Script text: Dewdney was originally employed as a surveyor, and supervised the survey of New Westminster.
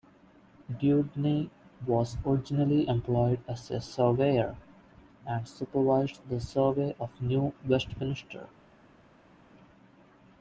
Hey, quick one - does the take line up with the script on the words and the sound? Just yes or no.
yes